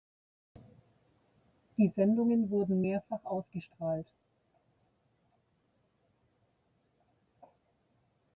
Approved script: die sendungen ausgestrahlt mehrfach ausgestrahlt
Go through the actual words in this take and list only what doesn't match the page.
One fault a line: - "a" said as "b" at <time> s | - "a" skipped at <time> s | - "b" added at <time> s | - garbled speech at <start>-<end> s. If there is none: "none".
- "ausgestrahlt" said as "wurden" at 2.5 s